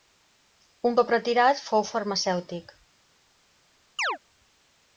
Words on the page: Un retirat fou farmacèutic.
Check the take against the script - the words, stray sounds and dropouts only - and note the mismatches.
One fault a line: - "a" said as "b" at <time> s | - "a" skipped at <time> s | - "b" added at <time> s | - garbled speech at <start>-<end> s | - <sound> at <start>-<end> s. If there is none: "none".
- "cop" added at 1.0 s
- chirp at 4.0-4.2 s